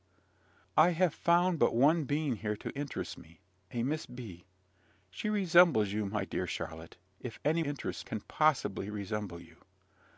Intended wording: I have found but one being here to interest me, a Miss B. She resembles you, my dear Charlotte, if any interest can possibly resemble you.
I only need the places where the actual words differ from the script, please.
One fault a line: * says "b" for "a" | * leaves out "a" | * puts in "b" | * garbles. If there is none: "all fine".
all fine